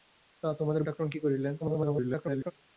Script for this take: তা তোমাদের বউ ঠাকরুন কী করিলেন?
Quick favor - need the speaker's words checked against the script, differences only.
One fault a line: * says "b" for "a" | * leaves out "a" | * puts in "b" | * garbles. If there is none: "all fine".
* leaves out "বউ"
* garbles